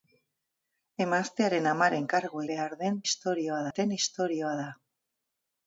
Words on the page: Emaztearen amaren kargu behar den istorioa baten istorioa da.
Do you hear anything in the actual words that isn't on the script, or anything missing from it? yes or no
no